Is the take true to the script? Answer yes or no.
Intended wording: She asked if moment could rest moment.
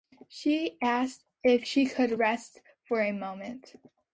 no